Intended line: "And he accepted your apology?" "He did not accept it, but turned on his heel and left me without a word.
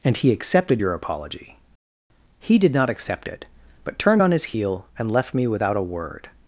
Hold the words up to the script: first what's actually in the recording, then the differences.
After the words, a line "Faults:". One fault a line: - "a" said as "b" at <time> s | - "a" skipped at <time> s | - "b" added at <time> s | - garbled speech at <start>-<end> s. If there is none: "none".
"And he accepted your apology?" "He did not accept it, but turned on his heel and left me without a word.
Faults:
none